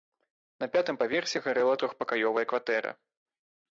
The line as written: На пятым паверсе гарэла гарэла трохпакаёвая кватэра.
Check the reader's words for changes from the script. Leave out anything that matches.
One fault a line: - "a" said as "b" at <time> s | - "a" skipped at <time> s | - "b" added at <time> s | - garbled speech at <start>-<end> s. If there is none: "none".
- "гарэла" skipped at 1.8 s